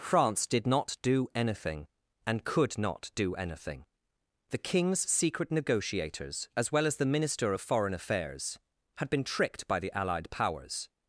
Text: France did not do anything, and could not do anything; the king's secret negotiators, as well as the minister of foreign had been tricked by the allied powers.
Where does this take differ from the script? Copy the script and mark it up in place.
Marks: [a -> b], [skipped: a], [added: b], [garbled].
France did not do anything, and could not do anything; the king's secret negotiators, as well as the minister of foreign [added: affairs] had been tricked by the allied powers.